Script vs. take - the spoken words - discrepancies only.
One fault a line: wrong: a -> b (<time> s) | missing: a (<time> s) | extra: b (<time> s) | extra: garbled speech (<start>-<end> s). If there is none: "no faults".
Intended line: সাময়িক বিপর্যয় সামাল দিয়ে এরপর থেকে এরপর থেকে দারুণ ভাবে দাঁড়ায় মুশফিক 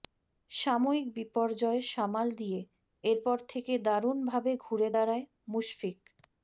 missing: এরপর থেকে (3.7 s)
extra: ঘুরে (4.6 s)